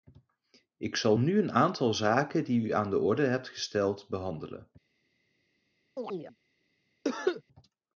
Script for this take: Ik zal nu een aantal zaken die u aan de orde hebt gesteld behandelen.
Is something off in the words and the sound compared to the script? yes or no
yes